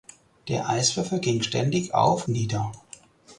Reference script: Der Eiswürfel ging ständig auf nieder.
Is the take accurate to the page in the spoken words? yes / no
yes